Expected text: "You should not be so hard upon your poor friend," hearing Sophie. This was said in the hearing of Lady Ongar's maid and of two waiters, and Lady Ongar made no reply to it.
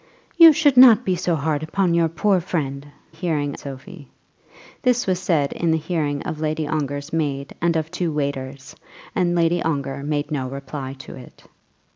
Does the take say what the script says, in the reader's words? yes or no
yes